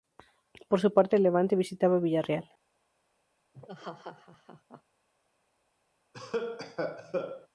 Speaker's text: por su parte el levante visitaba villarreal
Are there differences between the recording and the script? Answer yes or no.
no